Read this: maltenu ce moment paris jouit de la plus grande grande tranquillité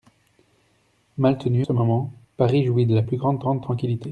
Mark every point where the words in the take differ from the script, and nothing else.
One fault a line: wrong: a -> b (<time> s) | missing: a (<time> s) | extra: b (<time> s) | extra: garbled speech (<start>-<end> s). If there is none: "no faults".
no faults